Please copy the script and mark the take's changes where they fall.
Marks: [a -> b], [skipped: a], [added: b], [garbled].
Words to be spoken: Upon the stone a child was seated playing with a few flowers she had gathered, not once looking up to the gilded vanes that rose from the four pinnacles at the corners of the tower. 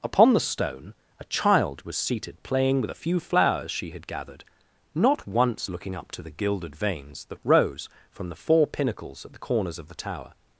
Upon the stone a child was seated playing with a few flowers she had gathered, not once looking up to the gilded vanes that rose from the four pinnacles at the corners of the tower.